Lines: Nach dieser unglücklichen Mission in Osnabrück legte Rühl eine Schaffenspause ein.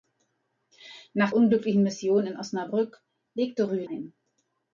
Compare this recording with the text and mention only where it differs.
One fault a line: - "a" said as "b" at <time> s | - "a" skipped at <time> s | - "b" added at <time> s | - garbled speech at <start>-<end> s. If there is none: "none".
- "dieser" skipped at 1.3 s
- "eine Schaffenspause" skipped at 3.9 s